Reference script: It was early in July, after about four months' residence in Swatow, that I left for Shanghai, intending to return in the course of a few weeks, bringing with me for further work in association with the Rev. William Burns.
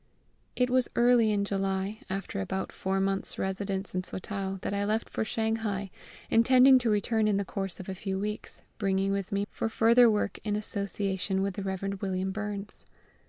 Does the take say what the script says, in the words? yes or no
yes